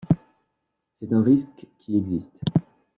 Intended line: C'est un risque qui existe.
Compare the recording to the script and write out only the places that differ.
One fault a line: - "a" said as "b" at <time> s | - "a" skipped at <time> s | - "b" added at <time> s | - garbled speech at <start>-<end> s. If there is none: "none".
none